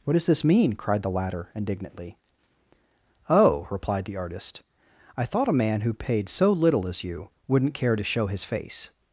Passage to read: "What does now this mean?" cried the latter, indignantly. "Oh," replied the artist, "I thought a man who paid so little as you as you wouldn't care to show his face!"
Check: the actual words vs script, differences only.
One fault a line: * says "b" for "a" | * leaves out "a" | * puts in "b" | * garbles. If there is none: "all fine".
* leaves out "now"
* leaves out "as you"